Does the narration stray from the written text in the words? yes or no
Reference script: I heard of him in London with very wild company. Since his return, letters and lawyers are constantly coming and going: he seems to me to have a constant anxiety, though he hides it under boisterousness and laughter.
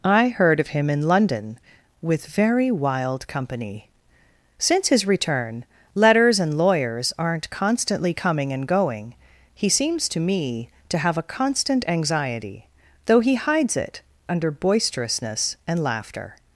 yes